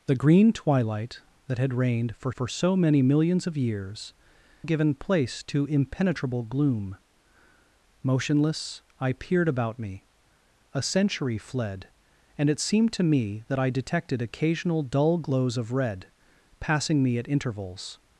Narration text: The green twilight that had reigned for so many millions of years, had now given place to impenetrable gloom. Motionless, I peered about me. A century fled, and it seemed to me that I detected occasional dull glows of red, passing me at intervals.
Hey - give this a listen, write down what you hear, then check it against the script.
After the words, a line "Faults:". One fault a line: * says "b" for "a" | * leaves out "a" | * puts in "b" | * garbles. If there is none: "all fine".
The green twilight that had reigned for for so many millions of years, given place to impenetrable gloom. Motionless, I peered about me. A century fled, and it seemed to me that I detected occasional dull glows of red, passing me at intervals.
Faults:
* puts in "for"
* leaves out "had now"